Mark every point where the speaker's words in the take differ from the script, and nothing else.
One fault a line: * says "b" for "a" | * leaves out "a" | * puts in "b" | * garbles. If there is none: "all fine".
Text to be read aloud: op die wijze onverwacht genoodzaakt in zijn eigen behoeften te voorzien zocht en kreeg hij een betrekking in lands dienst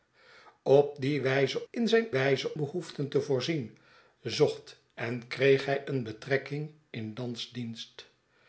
* leaves out "onverwacht genoodzaakt"
* says "wijze" for "eigen"